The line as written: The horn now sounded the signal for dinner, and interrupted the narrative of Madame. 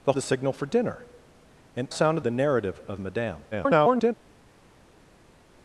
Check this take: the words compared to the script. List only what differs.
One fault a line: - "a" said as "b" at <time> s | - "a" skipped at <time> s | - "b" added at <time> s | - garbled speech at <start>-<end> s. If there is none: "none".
- "horn now sounded" skipped at 0.1 s
- "interrupted" said as "sounded" at 1.9 s
- garbled speech at 3.5-4.1 s